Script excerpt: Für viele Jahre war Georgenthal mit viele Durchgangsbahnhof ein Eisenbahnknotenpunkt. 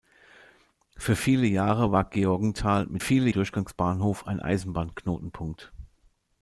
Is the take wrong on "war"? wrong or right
right